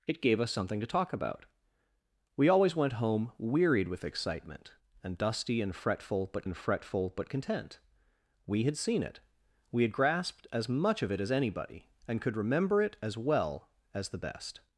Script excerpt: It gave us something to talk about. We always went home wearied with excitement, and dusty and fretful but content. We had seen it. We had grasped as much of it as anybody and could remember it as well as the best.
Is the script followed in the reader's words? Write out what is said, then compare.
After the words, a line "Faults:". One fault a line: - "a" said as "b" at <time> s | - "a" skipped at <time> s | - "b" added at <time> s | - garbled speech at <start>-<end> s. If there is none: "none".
It gave us something to talk about. We always went home wearied with excitement, and dusty and fretful but and fretful but content. We had seen it. We had grasped as much of it as anybody and could remember it as well as the best.
Faults:
- "and fretful but" added at 6.4 s